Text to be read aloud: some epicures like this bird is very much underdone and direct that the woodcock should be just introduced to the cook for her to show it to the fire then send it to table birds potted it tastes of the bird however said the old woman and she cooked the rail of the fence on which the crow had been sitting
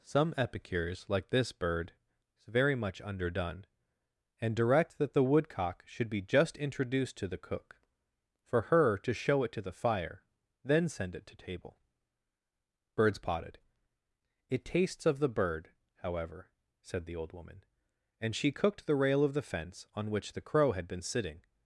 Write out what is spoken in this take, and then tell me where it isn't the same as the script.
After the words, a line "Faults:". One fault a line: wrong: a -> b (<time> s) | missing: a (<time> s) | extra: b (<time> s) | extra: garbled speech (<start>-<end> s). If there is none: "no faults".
some epicures like this bird is very much underdone and direct that the woodcock should be just introduced to the cook for her to show it to the fire then send it to table birds potted it tastes of the bird however said the old woman and she cooked the rail of the fence on which the crow had been sitting
Faults:
no faults